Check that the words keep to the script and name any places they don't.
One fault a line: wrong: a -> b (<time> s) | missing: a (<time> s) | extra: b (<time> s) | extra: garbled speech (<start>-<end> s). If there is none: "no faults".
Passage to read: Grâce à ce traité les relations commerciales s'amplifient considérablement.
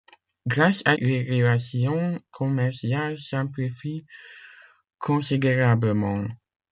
missing: ce traité (1.0 s)